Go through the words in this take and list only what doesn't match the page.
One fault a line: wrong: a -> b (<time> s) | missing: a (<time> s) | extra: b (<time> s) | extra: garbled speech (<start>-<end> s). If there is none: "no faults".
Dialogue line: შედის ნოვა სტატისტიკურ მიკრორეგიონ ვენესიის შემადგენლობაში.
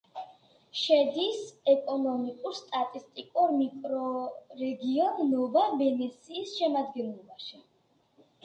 wrong: ნოვა -> ეკონომიკურ (1.7 s)
extra: ნოვა (5.3 s)